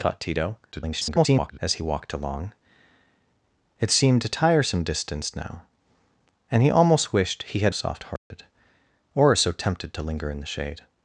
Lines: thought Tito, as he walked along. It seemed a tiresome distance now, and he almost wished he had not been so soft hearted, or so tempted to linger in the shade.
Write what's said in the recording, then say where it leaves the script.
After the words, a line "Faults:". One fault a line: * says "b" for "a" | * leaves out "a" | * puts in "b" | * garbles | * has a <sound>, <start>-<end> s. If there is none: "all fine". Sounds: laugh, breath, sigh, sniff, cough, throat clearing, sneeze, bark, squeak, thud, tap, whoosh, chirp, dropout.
thought Tito, [garbled] as he walked along. It seemed a tiresome distance now, and he almost wished he had soft hearted, or so tempted to linger in the shade.
Faults:
* garbles
* leaves out "not been so"
* has a dropout, 8.2-8.3 s